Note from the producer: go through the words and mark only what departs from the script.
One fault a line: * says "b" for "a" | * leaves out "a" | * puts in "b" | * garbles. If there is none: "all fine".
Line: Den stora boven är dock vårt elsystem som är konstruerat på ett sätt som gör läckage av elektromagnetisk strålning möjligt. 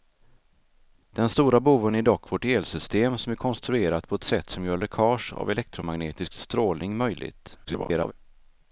* garbles